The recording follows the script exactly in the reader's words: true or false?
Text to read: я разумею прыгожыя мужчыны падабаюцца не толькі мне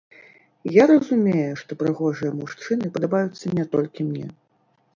false